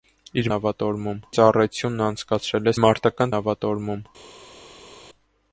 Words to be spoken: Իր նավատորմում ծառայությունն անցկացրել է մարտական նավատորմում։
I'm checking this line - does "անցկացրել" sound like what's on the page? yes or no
yes